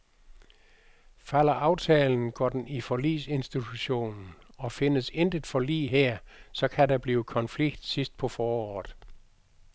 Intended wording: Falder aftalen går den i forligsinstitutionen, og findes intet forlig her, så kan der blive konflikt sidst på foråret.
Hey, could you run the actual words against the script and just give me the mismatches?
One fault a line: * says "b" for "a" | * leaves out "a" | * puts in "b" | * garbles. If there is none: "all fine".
all fine